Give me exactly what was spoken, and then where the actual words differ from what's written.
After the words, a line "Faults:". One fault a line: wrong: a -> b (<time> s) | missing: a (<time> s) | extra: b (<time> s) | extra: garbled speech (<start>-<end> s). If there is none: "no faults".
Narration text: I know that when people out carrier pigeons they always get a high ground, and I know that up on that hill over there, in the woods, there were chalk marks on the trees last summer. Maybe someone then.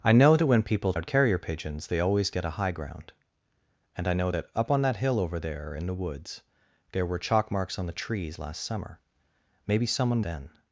I know that when people out carrier pigeons they always get a high ground, and I know that up on that hill over there, in the woods, there were chalk marks on the trees last summer. Maybe someone then.
Faults:
no faults